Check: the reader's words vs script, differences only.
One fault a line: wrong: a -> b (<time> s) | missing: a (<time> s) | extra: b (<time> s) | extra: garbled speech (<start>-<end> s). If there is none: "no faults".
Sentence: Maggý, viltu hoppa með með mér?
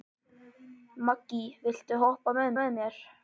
no faults